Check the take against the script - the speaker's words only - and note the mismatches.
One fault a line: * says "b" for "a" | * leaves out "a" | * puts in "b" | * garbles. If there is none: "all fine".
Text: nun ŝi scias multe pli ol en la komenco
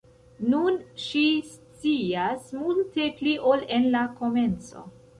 all fine